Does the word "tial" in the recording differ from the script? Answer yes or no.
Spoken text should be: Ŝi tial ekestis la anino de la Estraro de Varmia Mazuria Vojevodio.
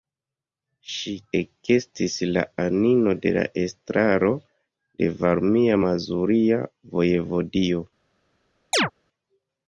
yes